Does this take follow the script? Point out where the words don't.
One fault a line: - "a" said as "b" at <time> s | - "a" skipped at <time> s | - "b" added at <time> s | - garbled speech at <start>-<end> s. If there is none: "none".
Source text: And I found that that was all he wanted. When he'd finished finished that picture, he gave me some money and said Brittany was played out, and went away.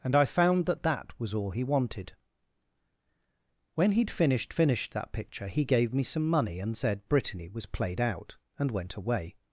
none